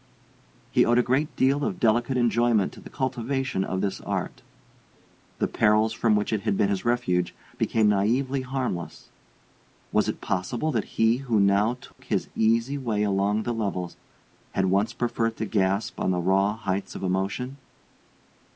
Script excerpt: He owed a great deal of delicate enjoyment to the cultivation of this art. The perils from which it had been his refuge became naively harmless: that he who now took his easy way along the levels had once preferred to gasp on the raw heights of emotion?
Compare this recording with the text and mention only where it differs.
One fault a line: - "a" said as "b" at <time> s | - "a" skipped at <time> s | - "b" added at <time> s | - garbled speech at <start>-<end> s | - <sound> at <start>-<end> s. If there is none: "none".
- "was it possible" added at 9.9 s
- dropout at 11.9-12.0 s